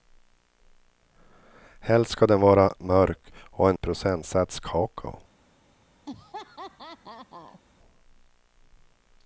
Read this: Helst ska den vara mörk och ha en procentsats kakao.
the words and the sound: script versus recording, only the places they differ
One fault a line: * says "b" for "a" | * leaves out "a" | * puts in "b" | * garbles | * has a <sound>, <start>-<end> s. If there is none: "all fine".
* has a laugh, 6.1-7.6 s